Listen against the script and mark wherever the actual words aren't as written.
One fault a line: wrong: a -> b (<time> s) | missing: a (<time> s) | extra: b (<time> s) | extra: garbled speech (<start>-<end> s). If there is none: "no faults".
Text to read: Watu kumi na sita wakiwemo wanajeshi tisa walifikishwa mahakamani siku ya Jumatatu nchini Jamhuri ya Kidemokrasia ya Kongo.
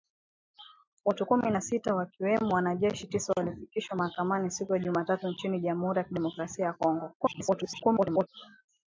extra: garbled speech (7.2-8.3 s)